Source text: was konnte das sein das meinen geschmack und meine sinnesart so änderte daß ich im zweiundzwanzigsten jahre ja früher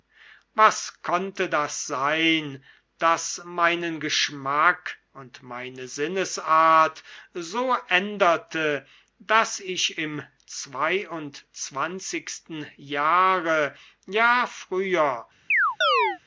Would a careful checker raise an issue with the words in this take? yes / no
no